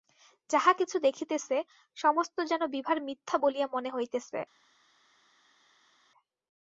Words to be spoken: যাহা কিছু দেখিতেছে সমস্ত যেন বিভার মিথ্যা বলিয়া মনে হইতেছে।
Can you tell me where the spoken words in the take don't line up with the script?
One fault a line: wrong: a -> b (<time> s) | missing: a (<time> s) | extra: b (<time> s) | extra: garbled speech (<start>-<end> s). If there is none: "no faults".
no faults